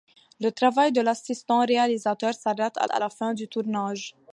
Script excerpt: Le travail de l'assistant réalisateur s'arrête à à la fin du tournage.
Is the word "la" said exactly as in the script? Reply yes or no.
yes